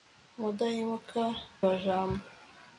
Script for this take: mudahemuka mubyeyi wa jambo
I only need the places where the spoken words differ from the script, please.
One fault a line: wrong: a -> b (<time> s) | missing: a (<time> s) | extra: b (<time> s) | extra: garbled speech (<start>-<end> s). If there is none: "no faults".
missing: mubyeyi (1.2 s)